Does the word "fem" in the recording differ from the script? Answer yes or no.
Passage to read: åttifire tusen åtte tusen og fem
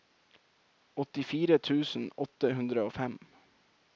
no